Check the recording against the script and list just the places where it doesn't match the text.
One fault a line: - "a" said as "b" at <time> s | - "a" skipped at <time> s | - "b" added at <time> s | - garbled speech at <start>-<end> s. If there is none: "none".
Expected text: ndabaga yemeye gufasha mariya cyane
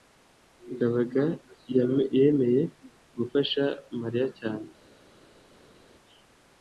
none